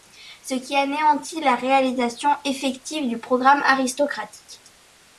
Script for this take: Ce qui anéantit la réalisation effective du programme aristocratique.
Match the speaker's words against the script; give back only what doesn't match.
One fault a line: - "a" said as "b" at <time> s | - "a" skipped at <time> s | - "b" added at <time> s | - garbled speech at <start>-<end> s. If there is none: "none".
none